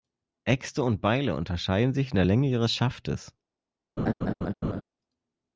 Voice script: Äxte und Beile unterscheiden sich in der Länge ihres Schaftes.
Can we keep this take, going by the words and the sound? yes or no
no